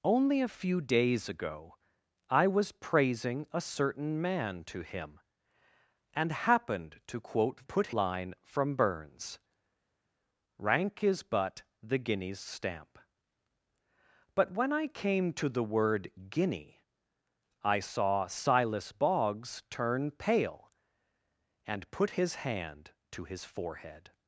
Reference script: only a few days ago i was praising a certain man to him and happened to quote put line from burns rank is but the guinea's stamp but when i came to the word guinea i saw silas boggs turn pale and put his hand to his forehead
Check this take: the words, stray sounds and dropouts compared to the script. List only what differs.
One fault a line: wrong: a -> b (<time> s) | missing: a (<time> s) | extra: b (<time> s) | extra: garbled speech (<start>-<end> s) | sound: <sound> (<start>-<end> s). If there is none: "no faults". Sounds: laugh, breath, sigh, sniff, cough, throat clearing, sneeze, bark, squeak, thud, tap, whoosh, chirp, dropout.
no faults